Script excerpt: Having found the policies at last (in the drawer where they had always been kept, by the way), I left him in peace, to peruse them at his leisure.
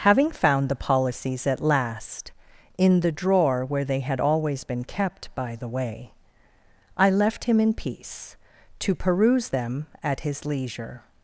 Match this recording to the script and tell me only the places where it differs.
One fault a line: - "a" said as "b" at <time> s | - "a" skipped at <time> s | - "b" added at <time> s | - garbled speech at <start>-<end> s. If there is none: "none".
none